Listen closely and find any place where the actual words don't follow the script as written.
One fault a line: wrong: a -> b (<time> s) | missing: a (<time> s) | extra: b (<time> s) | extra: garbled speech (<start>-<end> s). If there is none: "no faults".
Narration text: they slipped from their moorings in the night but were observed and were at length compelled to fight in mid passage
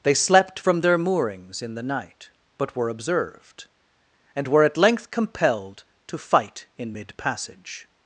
wrong: slipped -> slept (0.1 s)